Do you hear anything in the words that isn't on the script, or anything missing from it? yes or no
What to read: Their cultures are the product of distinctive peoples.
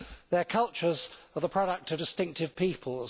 no